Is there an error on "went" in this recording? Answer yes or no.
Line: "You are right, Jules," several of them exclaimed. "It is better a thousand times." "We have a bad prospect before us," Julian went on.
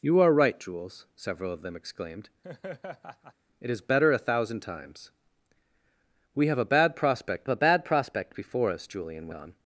yes